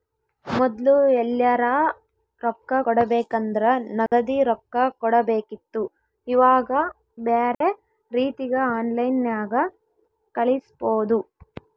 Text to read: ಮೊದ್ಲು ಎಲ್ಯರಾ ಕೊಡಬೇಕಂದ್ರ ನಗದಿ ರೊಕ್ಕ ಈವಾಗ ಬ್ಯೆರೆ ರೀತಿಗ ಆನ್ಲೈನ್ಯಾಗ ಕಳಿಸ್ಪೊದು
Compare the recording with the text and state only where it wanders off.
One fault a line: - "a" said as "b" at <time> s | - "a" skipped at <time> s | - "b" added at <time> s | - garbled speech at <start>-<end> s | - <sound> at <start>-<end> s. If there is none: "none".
- "ರೊಕ್ಕ" added at 2.4 s
- dropout at 4.1-4.1 s
- "ಕೊಡಬೇಕಿತ್ತು" added at 5.0 s
- dropout at 7.5-7.6 s